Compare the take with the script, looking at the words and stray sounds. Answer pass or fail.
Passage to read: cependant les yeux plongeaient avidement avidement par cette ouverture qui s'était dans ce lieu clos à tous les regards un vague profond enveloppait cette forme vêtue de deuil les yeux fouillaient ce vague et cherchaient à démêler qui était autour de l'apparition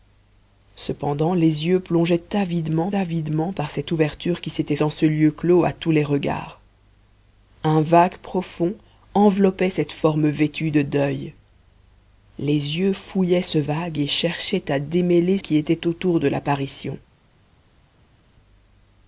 pass